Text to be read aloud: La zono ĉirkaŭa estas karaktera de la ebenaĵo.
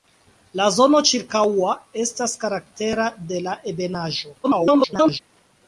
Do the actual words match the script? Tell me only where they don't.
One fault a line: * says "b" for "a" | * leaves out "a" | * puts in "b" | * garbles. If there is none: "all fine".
* garbles